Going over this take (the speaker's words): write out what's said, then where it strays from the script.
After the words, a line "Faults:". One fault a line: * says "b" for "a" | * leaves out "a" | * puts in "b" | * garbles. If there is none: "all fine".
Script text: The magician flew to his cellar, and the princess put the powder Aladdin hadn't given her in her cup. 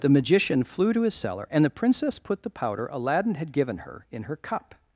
The magician flew to his cellar, and the princess put the powder Aladdin had given her in her cup.
Faults:
* says "had" for "hadn't"